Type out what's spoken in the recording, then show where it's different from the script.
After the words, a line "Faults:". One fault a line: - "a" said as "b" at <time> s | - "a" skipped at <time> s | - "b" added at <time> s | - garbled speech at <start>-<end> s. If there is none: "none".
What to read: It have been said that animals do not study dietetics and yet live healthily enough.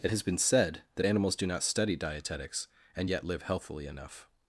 It has been said that animals do not study dietetics and yet live healthily enough.
Faults:
- "have" said as "has" at 0.1 s